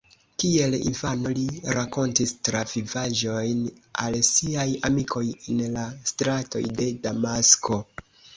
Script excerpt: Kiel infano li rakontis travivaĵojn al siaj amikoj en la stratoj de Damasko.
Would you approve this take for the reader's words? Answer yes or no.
yes